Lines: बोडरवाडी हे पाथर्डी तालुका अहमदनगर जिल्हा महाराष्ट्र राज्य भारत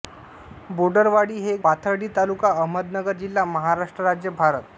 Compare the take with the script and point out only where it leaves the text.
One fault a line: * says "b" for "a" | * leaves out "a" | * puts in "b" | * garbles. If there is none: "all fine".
all fine